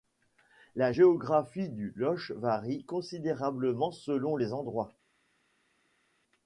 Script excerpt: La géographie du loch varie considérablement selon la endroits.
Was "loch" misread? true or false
false